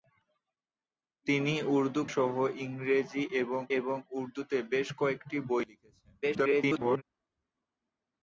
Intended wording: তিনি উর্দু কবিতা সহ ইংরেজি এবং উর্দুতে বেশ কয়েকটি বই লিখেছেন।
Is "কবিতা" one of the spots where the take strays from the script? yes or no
yes